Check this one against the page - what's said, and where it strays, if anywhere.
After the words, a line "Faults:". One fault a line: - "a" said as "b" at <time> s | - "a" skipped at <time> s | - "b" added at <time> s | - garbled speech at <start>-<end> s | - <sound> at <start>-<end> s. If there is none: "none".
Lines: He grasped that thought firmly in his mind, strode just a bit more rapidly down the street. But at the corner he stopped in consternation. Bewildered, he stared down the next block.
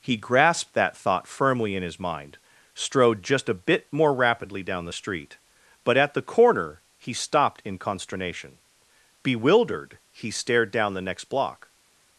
He grasped that thought firmly in his mind, strode just a bit more rapidly down the street. But at the corner he stopped in consternation. Bewildered, he stared down the next block.
Faults:
none